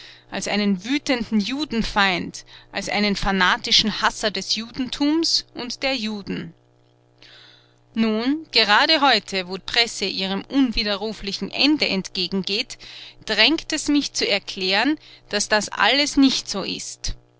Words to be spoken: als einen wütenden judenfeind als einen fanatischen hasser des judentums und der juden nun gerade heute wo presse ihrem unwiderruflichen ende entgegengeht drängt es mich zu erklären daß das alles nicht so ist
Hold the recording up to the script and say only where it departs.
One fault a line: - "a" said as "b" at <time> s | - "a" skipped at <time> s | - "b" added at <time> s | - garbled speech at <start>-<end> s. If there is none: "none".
none